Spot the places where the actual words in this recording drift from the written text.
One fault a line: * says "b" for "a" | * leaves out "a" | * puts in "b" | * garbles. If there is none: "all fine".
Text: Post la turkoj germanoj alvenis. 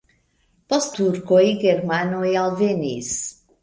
* leaves out "la"